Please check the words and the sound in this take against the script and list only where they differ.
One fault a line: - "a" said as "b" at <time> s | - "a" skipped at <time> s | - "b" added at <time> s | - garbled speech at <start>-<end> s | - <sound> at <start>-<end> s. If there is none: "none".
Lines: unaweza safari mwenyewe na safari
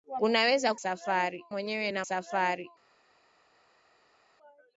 none